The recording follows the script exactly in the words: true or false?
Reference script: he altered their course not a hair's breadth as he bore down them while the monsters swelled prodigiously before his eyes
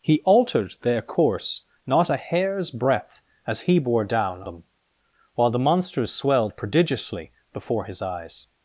true